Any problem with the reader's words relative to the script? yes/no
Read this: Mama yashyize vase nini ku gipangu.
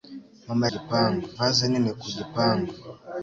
yes